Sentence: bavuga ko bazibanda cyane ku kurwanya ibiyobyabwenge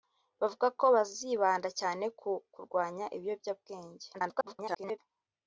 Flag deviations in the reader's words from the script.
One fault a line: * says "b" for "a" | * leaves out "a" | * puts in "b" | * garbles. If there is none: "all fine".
* garbles